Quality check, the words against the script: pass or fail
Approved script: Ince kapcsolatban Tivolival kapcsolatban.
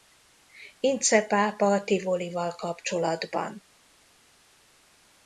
fail